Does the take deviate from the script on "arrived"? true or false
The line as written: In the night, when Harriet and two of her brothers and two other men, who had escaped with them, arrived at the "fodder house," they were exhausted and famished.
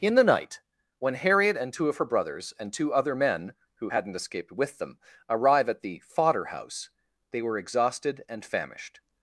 true